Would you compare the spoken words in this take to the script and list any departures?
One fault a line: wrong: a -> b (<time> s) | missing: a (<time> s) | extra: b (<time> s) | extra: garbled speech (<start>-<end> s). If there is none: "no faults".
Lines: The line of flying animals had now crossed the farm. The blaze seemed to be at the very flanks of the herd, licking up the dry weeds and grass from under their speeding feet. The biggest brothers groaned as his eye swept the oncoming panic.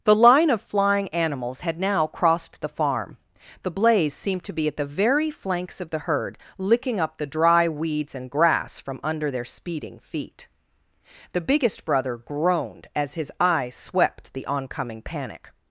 wrong: brothers -> brother (11.8 s)